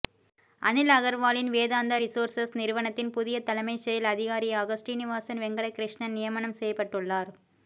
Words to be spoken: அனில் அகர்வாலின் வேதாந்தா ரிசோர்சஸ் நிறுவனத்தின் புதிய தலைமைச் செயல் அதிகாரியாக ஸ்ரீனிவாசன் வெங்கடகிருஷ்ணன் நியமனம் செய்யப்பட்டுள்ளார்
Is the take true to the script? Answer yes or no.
yes